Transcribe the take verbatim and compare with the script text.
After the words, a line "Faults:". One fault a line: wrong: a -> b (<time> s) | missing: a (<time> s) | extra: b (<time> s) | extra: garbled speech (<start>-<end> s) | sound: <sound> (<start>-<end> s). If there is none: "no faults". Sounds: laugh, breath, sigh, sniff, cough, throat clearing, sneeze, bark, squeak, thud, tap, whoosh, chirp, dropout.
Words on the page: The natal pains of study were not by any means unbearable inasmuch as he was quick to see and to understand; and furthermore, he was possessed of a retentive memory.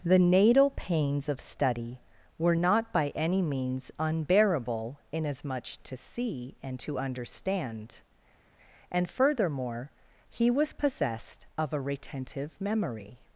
The natal pains of study were not by any means unbearable inasmuch to see and to understand; and furthermore, he was possessed of a retentive memory.
Faults:
missing: as he was quick (5.8 s)